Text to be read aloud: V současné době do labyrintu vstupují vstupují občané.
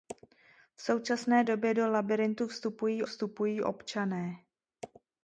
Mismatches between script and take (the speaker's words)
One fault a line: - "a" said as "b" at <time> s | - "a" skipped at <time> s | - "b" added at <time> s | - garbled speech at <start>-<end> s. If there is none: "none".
none